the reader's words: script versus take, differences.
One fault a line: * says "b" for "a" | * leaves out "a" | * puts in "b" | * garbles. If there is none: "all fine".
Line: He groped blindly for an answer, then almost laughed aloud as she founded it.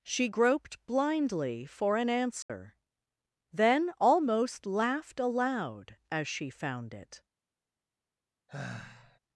* says "She" for "He"
* says "found" for "founded"